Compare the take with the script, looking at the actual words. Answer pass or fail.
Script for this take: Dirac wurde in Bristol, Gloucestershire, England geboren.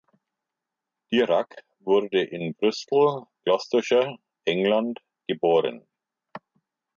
pass